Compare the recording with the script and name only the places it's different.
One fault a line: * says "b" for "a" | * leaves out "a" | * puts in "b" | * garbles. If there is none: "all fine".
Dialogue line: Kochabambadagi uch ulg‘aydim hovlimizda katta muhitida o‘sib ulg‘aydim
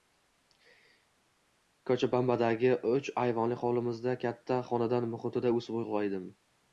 * says "ayvonli" for "ulg‘aydim"
* puts in "xonadon"